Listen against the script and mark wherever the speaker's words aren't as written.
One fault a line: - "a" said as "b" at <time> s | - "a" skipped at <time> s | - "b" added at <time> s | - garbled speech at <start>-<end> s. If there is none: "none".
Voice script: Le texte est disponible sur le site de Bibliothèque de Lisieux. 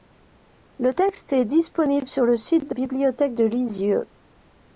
none